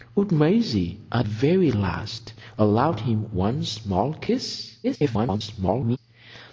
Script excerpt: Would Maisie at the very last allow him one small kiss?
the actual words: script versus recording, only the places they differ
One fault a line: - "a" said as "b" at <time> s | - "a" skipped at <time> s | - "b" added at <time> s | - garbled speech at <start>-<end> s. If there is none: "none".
- "the" skipped at 1.3 s
- garbled speech at 4.8-6.0 s